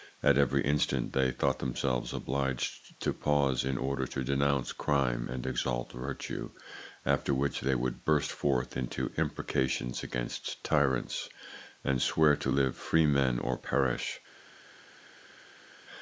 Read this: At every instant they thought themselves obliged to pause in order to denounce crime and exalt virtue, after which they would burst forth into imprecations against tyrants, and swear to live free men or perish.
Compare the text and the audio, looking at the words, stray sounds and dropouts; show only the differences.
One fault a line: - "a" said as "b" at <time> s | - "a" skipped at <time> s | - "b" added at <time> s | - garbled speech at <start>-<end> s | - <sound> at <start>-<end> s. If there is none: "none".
none